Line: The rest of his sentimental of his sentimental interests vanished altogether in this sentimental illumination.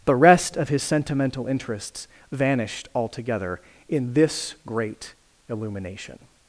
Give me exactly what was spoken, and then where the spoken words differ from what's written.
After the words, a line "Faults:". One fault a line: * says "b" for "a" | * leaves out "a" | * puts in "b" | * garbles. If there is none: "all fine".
The rest of his sentimental interests vanished altogether in this great illumination.
Faults:
* leaves out "of his sentimental"
* says "great" for "sentimental"